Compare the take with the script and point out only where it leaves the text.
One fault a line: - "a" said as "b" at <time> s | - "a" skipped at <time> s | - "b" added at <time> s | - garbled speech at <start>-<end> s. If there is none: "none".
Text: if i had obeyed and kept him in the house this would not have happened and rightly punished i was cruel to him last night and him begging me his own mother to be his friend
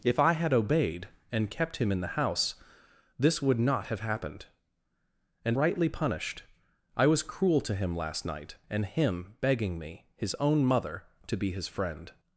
none